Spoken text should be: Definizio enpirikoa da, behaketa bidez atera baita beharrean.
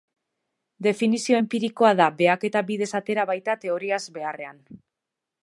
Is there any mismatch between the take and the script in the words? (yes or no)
yes